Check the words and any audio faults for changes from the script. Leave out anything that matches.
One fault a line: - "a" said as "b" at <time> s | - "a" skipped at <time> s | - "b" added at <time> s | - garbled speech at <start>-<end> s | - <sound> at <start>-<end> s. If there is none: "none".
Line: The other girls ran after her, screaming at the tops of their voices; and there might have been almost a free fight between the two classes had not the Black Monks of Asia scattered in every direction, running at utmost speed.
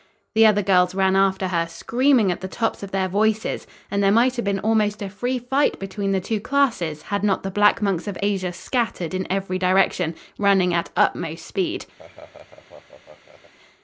- laugh at 12.0-13.5 s